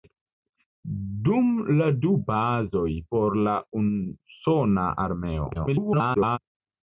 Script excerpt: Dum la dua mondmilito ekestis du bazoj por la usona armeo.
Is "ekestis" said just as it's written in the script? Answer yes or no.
no